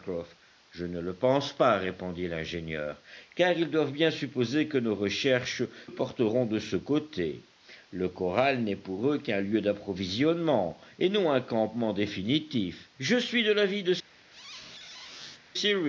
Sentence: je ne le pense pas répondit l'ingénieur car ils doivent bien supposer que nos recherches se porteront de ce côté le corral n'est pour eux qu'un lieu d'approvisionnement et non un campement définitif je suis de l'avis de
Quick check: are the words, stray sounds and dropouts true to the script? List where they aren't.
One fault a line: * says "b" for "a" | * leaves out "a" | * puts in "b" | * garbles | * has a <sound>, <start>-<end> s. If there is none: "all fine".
* leaves out "se"
* has a squeak, 14.3-15.5 s